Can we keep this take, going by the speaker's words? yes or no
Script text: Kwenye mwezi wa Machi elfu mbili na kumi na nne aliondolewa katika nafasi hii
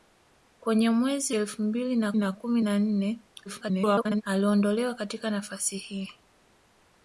no